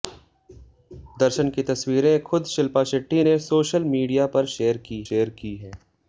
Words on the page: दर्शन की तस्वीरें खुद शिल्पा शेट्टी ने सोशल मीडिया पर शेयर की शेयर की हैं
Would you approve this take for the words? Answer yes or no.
yes